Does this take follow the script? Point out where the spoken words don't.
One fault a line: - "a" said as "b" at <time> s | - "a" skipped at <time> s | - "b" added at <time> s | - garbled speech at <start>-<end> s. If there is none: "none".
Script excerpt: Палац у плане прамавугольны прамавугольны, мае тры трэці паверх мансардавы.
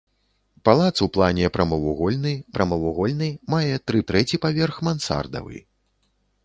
none